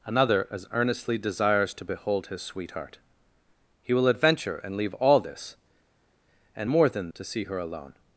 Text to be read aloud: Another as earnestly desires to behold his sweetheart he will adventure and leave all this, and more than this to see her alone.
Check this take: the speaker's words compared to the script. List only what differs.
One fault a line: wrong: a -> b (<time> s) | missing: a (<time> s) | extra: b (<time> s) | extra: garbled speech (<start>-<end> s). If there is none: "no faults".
missing: this (7.1 s)